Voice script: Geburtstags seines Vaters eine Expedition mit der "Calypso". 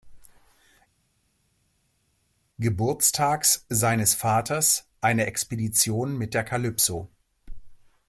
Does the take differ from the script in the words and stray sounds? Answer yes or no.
no